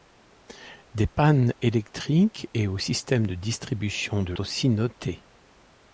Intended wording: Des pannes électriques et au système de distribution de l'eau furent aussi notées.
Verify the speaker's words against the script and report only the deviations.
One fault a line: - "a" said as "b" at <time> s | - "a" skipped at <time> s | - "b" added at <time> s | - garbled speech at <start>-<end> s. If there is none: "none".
- "l'eau furent" skipped at 4.3 s